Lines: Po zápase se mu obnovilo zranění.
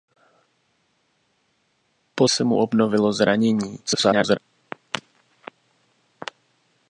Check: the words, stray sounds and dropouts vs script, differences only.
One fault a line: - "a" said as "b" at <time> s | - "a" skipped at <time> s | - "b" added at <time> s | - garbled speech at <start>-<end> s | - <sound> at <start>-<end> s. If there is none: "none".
- "zápase" skipped at 2.3 s
- garbled speech at 3.9-4.4 s